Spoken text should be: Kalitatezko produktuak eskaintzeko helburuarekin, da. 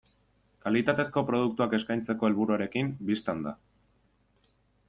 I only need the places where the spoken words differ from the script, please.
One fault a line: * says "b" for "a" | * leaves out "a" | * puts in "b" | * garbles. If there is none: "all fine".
* puts in "bistan"